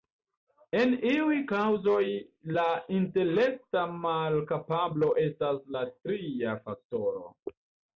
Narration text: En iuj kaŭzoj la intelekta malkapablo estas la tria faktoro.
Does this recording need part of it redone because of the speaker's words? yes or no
no